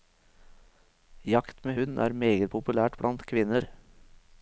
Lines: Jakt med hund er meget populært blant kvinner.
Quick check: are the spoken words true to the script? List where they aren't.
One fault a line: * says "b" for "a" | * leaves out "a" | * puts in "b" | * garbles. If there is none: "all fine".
all fine